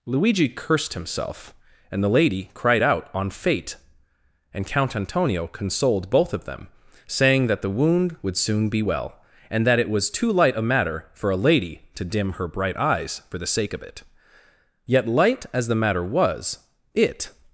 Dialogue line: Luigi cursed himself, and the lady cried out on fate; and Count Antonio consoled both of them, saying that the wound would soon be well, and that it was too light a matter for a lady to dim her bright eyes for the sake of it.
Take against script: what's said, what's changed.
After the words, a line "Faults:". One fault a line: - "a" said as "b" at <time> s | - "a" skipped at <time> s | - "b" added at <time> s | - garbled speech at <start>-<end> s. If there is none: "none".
Luigi cursed himself, and the lady cried out on fate; and Count Antonio consoled both of them, saying that the wound would soon be well, and that it was too light a matter for a lady to dim her bright eyes for the sake of it. Yet light as the matter was, it
Faults:
- "Yet light as the matter was it" added at 14.8 s